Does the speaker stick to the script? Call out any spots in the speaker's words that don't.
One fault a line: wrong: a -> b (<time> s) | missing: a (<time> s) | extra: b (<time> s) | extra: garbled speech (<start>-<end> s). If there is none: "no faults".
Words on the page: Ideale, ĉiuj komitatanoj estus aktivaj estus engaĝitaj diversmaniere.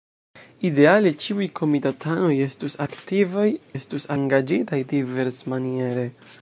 no faults